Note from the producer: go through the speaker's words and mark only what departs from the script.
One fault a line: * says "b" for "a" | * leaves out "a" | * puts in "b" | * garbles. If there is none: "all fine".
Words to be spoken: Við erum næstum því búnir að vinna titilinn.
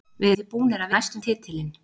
* leaves out "erum næstum"
* says "næstum" for "vinna"